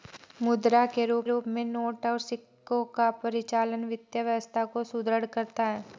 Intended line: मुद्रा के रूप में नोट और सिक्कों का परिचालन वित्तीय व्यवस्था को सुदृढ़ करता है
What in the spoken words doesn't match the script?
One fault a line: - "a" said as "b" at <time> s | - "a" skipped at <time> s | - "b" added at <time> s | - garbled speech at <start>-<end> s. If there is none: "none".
- "रूप" added at 1.2 s